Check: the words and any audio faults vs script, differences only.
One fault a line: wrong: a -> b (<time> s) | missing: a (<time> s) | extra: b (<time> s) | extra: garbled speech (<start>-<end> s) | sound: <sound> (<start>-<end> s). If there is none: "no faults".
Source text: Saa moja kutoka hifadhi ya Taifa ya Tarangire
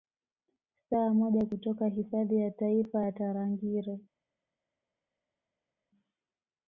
no faults